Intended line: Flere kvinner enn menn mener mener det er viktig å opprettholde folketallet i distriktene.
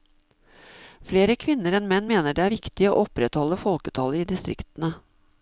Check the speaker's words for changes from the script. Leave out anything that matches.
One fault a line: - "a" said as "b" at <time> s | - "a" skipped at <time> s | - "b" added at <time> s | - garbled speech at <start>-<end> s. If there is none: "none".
- "mener" skipped at 2.4 s